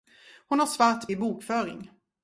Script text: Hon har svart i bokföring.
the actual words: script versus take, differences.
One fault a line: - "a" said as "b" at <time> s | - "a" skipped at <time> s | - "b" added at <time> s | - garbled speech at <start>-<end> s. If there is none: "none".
none